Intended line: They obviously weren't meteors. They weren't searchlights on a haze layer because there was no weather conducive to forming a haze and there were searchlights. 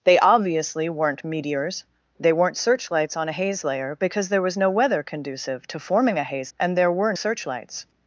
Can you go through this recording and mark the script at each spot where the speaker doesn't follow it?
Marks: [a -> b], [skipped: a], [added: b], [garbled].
They obviously weren't meteors. They weren't searchlights on a haze layer because there was no weather conducive to forming a haze and there were searchlights.